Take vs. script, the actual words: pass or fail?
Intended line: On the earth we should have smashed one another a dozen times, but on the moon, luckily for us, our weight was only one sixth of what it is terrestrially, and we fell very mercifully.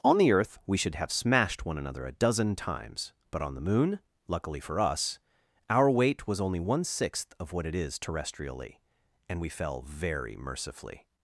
pass